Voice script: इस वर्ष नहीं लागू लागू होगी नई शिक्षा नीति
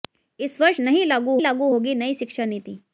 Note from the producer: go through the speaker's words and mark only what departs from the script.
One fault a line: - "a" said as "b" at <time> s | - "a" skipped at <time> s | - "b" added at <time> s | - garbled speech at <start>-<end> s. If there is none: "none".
none